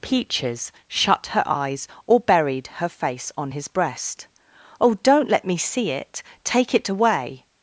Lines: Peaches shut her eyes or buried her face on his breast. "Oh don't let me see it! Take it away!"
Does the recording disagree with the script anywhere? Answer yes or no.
no